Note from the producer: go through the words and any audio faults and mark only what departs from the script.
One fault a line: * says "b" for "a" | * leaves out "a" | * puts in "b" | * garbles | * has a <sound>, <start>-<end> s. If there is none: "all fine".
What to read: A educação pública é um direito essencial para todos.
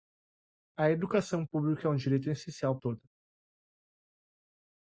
* leaves out "para"